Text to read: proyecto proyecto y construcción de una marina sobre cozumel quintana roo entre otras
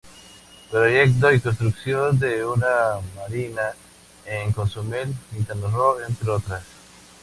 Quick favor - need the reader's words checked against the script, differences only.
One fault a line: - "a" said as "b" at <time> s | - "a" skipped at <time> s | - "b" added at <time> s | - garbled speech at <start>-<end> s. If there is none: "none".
- "proyecto" skipped at 1.3 s
- "sobre" said as "en" at 4.2 s